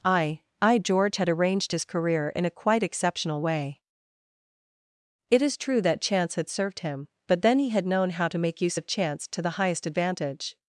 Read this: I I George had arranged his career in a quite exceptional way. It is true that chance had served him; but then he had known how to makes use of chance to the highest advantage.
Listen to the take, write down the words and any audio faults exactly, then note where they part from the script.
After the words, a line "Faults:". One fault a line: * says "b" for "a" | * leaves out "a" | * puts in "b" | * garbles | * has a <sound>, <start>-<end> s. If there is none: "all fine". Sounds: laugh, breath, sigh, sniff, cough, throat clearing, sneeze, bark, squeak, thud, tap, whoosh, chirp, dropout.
I I George had arranged his career in a quite exceptional way. It is true that chance had served him; but then he had known how to make use of chance to the highest advantage.
Faults:
* says "make" for "makes"